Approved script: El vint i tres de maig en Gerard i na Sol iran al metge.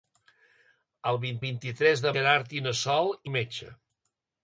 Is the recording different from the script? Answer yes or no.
yes